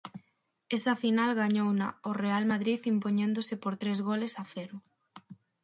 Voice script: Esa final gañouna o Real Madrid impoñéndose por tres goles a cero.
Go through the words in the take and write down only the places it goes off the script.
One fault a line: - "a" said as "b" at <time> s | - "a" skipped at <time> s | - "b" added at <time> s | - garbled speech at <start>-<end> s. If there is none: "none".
none